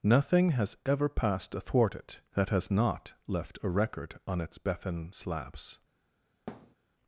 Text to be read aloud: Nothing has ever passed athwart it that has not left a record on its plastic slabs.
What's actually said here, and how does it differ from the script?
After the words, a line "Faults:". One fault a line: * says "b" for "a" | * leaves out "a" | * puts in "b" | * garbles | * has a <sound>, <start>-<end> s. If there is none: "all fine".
Nothing has ever passed athwart it that has not left a record on its bethan slabs.
Faults:
* says "bethan" for "plastic"
* has a thud, 6.5-6.8 s